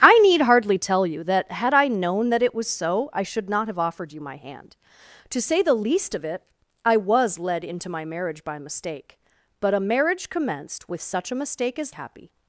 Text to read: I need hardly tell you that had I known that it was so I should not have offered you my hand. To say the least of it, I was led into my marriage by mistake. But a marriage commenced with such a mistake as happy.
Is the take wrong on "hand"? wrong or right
right